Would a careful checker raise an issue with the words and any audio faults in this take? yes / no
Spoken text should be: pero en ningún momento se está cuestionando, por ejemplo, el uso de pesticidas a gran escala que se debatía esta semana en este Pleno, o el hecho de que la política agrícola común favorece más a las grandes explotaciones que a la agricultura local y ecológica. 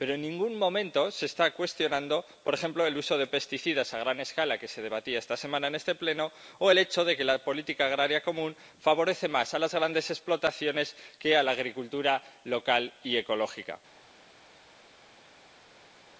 no